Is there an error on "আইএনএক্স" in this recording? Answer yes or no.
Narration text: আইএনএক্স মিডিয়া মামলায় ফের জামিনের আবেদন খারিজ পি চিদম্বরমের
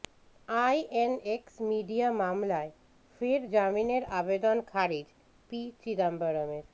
no